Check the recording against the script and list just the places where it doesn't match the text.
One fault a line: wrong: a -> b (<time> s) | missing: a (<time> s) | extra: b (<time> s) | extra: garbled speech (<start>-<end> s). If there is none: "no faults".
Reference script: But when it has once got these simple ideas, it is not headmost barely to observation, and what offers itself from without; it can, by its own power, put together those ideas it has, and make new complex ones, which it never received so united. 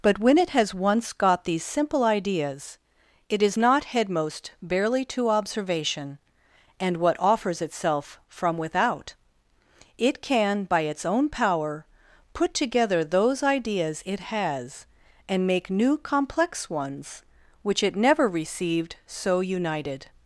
no faults